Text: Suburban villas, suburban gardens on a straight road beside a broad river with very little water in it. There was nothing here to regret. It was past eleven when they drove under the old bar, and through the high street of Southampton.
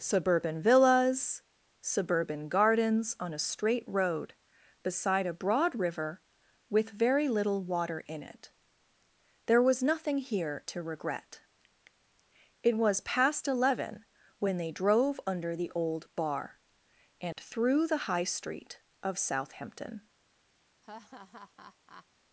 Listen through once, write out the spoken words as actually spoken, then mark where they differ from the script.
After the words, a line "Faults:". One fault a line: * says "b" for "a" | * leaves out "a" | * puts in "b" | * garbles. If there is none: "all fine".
Suburban villas, suburban gardens on a straight road beside a broad river with very little water in it. There was nothing here to regret. It was past eleven when they drove under the old bar, and through the high street of Southampton.
Faults:
all fine